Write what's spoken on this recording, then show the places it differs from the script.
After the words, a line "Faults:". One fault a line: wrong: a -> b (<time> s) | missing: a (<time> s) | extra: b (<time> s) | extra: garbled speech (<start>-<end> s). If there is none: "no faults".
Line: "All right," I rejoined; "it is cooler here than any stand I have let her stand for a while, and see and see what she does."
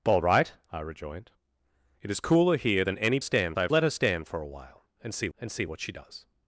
"All right," I rejoined; "it is cooler here than any stand I have let her stand for a while, and see and see what she does."
Faults:
no faults